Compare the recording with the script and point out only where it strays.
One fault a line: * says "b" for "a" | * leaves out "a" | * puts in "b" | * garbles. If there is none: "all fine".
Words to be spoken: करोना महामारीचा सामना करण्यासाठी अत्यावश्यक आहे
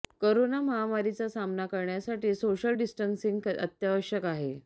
* puts in "सोशल डिस्टन्सिंग"